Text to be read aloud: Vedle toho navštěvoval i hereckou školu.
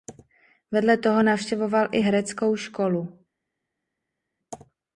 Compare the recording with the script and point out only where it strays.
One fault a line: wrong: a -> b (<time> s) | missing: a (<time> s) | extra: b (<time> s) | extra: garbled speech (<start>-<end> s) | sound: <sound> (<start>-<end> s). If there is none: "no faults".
no faults